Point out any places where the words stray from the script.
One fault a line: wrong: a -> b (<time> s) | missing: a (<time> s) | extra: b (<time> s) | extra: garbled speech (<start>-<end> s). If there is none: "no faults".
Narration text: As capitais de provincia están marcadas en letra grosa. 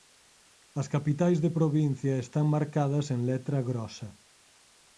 no faults